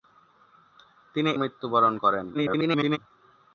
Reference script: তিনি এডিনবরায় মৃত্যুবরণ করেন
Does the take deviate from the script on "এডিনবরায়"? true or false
true